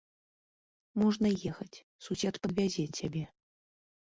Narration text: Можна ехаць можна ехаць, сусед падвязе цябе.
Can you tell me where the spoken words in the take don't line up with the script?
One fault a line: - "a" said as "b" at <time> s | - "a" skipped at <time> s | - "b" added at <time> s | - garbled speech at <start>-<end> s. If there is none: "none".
- "можна ехаць" skipped at 1.8 s